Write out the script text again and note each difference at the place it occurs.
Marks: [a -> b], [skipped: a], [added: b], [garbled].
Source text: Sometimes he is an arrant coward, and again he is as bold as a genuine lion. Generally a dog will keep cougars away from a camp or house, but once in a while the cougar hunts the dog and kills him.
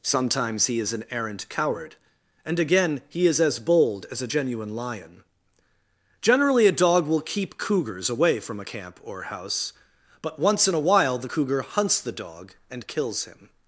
Sometimes he is an arrant coward, and again he is as bold as a genuine lion. Generally a dog will keep cougars away from a camp or house, but once in a while the cougar hunts the dog and kills him.